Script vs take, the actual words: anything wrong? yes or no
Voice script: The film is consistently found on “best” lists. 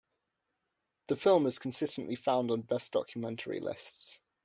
yes